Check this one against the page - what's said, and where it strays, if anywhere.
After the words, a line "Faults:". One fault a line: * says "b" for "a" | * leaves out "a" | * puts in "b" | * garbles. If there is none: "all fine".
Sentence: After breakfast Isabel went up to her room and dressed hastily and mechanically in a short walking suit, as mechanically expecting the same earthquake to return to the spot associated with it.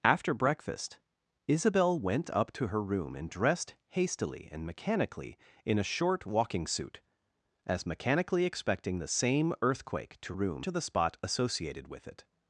After breakfast Isabel went up to her room and dressed hastily and mechanically in a short walking suit, as mechanically expecting the same earthquake to room to the spot associated with it.
Faults:
* says "room" for "return"